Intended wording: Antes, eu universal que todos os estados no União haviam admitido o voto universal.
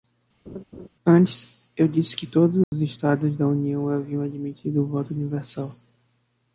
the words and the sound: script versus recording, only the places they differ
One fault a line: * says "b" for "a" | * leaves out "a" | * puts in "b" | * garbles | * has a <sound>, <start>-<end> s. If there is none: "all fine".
* has a laugh, 0.5-0.9 s
* says "disse" for "universal"
* has a dropout, 2.6-2.7 s
* says "da" for "no"